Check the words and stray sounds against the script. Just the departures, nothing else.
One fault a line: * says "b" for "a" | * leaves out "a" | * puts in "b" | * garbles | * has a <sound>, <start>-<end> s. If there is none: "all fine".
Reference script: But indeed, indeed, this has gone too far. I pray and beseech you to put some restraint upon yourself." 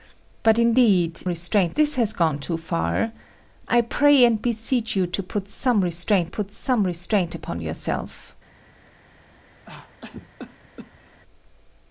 * says "restraint" for "indeed"
* puts in "put some restraint"
* has a cough, 9.7-11.2 s